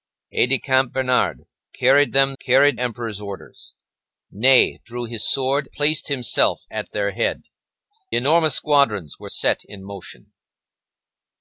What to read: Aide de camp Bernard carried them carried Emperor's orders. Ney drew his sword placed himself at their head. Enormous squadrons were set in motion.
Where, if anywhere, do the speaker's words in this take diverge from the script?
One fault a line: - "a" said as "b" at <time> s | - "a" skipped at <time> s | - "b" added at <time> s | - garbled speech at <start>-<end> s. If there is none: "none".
none